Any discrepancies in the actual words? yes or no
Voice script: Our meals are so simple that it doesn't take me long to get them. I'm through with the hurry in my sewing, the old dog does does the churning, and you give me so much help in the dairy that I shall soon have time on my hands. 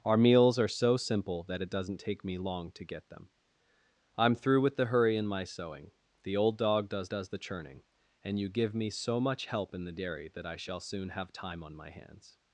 no